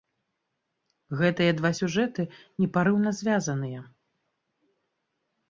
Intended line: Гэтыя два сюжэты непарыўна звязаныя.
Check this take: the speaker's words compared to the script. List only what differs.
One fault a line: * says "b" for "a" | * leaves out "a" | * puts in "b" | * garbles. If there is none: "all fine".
all fine